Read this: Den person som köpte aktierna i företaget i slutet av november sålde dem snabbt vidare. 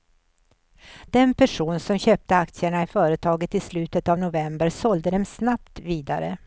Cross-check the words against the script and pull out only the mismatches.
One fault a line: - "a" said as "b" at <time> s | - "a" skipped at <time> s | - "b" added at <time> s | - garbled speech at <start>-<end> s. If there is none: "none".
none